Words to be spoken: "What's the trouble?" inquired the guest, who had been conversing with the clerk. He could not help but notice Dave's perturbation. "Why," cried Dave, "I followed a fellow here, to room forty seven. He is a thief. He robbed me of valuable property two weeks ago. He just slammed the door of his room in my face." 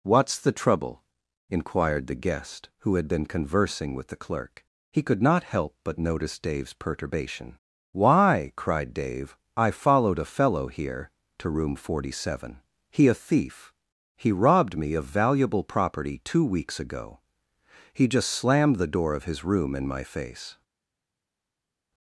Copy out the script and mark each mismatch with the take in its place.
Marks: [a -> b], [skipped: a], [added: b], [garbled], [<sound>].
"What's the trouble?" inquired the guest, who had been conversing with the clerk. He could not help but notice Dave's perturbation. "Why," cried Dave, "I followed a fellow here, to room forty seven. He [skipped: is] a thief. He robbed me of valuable property two weeks ago. He just slammed the door of his room in my face."